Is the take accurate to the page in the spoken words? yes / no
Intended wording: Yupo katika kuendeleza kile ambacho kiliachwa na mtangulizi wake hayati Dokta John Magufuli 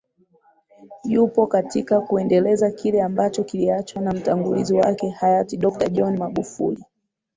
yes